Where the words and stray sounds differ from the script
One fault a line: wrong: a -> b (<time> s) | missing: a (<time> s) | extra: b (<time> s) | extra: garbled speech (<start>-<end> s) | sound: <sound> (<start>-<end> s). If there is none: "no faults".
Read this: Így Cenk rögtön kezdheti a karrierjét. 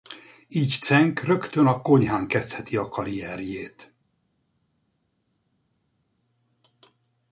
extra: a konyhán (1.7 s)